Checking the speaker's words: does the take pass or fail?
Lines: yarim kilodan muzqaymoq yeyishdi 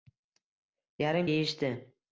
fail